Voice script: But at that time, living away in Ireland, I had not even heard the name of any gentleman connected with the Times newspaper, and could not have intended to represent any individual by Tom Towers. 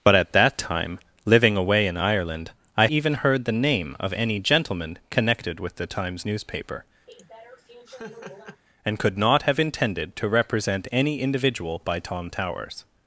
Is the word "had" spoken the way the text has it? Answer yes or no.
no